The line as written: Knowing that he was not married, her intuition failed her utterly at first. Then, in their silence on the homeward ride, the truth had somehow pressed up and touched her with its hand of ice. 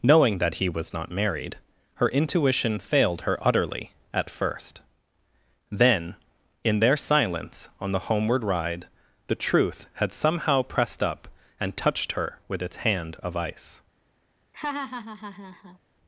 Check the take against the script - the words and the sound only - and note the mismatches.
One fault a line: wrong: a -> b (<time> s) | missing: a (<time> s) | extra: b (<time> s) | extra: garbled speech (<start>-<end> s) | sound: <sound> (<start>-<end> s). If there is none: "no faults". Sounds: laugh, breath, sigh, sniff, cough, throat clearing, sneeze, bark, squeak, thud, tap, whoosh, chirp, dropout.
sound: laugh (14.5-15.8 s)